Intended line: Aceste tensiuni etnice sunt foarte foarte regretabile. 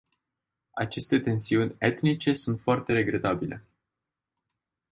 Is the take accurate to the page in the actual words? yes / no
no